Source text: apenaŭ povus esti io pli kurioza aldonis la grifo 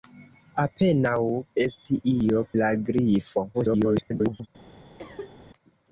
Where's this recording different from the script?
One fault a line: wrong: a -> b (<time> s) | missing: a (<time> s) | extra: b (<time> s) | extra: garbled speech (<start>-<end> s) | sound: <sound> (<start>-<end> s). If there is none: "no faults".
missing: povus (1.2 s)
missing: pli kurioza aldonis (2.4 s)
extra: garbled speech (3.5-4.5 s)
sound: cough (5.0-5.4 s)